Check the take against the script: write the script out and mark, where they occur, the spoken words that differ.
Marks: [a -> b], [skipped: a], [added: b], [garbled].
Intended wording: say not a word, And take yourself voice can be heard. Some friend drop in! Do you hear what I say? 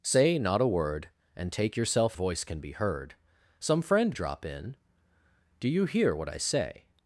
say not a word, And take yourself voice can be heard. Some friend drop in! Do you hear what I say?